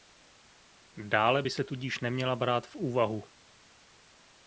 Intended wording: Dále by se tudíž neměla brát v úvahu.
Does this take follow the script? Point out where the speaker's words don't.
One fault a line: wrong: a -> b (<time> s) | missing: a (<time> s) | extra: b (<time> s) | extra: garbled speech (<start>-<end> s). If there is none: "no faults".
no faults